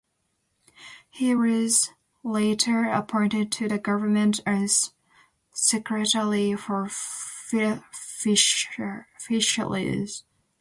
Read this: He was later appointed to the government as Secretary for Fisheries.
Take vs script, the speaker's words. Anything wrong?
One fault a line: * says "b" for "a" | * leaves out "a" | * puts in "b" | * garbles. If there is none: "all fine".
all fine